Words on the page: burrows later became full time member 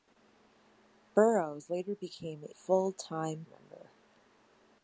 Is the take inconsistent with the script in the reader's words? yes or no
no